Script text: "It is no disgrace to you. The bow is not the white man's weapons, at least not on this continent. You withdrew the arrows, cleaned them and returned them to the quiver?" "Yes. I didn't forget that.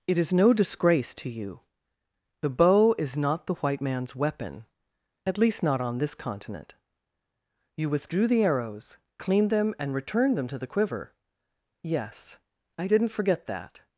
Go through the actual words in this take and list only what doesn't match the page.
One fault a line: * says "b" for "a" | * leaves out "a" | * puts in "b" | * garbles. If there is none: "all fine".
* says "weapon" for "weapons"